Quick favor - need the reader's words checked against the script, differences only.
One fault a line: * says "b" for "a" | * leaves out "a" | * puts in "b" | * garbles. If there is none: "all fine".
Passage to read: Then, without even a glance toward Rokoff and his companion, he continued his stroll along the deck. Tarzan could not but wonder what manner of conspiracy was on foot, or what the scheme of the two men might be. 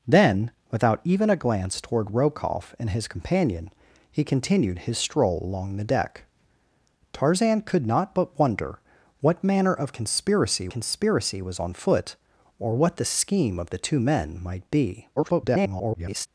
* puts in "conspiracy"
* garbles